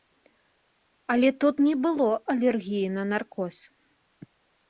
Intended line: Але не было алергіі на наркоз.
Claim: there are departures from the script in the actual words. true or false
true